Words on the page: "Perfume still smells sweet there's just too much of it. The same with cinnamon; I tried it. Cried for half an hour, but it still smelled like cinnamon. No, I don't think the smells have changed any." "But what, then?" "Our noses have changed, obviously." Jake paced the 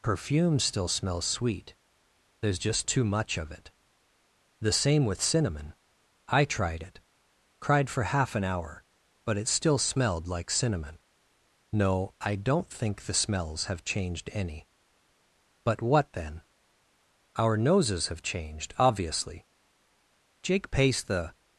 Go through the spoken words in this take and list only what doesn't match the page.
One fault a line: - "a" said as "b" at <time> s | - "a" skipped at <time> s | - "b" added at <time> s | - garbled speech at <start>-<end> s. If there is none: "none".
none